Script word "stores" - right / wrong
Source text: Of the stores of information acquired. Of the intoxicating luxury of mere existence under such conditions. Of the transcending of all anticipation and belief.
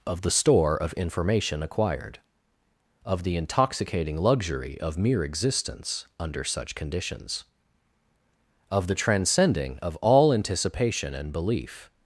wrong